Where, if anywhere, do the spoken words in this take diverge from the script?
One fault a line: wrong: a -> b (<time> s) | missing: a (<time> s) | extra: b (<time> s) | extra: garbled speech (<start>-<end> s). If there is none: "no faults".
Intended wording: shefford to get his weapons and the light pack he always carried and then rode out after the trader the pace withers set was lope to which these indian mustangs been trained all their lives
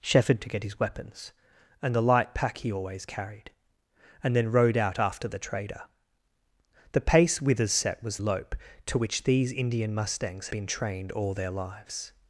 no faults